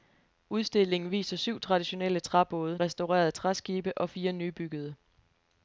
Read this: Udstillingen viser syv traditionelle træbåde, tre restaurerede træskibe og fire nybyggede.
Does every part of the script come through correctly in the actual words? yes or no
no